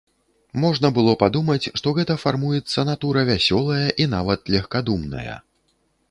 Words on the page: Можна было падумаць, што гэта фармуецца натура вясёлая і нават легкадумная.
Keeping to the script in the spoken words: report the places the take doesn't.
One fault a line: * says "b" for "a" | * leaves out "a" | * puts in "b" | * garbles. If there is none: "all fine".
all fine